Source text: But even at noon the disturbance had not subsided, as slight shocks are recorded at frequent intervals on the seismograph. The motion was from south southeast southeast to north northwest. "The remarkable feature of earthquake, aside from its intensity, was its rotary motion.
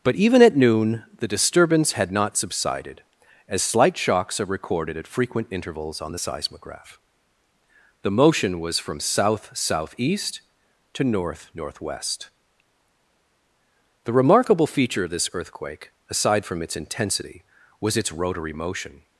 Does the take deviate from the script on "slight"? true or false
false